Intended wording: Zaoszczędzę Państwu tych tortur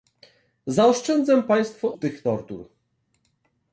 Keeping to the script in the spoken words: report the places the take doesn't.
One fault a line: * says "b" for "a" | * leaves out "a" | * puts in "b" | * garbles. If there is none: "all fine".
all fine